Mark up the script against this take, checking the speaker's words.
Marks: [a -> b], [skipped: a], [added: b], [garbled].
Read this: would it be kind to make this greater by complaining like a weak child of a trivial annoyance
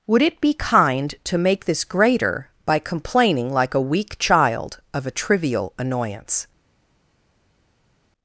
would it be kind to make this greater by complaining like a weak child of a trivial annoyance